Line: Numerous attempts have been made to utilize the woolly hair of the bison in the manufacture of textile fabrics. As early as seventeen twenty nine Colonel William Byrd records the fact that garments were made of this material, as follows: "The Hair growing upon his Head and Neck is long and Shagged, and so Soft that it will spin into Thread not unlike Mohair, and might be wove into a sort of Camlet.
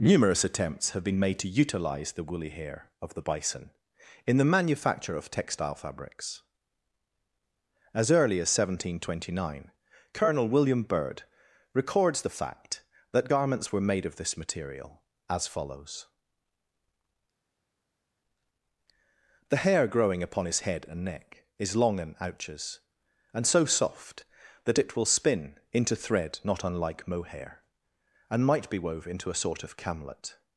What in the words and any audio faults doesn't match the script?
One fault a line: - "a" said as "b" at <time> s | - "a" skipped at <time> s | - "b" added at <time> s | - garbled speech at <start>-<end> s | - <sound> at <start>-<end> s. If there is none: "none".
- "Shagged" said as "Ouches" at 22.2 s